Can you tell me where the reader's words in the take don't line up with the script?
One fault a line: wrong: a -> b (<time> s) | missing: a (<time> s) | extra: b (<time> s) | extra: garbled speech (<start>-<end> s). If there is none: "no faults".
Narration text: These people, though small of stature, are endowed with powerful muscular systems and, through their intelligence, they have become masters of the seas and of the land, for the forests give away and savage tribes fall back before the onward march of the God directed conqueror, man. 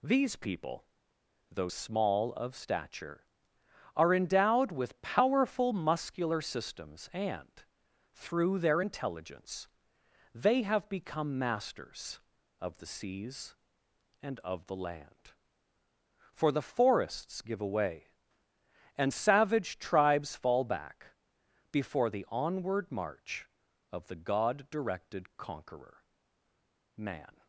no faults